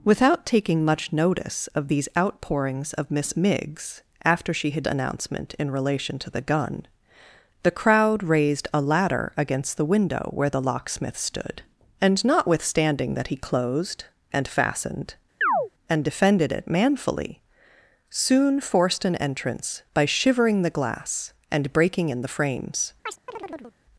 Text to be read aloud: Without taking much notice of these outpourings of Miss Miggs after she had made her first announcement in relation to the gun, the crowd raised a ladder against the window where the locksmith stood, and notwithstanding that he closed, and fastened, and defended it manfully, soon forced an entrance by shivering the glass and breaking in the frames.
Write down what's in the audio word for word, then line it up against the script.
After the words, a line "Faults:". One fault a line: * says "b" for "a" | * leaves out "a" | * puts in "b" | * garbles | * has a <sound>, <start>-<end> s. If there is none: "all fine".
Without taking much notice of these outpourings of Miss Miggs after she had announcement in relation to the gun, the crowd raised a ladder against the window where the locksmith stood, and notwithstanding that he closed, and fastened, and defended it manfully, soon forced an entrance by shivering the glass and breaking in the frames.
Faults:
* leaves out "made her first"
* has a chirp, 15.4-15.7 s
* has a chirp, 23.1-23.8 s